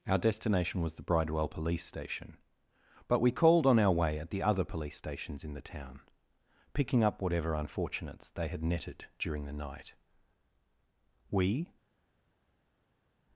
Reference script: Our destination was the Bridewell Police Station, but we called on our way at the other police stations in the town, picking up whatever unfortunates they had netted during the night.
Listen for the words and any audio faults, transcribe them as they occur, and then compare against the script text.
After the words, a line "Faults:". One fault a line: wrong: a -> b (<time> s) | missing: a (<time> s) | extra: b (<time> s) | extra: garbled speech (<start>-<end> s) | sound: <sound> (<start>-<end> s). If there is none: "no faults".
Our destination was the Bridewell Police Station, but we called on our way at the other police stations in the town, picking up whatever unfortunates they had netted during the night. We
Faults:
extra: We (11.3 s)